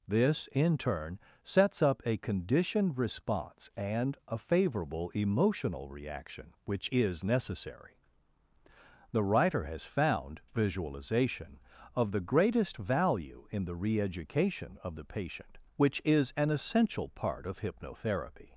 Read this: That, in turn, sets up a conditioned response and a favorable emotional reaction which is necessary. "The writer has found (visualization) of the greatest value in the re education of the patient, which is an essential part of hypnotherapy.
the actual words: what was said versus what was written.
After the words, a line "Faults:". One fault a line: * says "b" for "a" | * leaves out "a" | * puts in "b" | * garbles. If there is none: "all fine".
This, in turn, sets up a conditioned response and a favorable emotional reaction which is necessary. "The writer has found (visualization) of the greatest value in the re education of the patient, which is an essential part of hypnotherapy.
Faults:
* says "This" for "That"